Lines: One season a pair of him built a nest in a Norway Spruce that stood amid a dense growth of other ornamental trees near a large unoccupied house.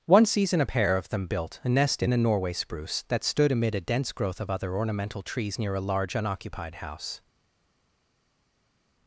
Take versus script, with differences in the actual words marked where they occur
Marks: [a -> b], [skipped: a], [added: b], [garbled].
One season a pair of [him -> them] built a nest in a Norway Spruce that stood amid a dense growth of other ornamental trees near a large unoccupied house.